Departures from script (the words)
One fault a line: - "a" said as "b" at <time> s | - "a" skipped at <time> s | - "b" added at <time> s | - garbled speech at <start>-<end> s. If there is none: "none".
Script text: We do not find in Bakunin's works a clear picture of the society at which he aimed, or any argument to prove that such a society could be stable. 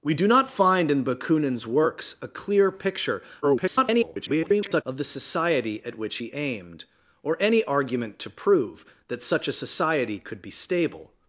- garbled speech at 3.4-4.8 s